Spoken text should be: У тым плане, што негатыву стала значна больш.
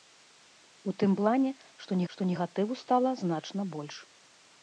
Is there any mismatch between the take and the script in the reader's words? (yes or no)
yes